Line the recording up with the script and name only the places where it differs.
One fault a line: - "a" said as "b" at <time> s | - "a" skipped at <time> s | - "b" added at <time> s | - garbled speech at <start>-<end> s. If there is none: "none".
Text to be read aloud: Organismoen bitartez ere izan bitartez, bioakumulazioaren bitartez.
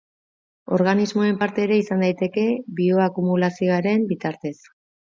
- "bitartez" said as "parte" at 1.4 s
- "bitartez" said as "daiteke" at 2.1 s